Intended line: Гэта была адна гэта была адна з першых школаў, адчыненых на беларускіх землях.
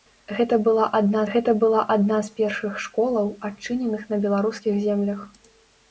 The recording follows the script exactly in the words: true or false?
true